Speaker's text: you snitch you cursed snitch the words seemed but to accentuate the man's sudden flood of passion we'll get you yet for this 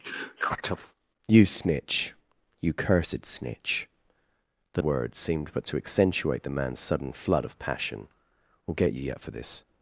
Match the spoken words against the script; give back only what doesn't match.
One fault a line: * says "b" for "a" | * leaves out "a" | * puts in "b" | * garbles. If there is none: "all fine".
all fine